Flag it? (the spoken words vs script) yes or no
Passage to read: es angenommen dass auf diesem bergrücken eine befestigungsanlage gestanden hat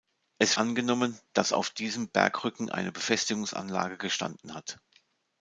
no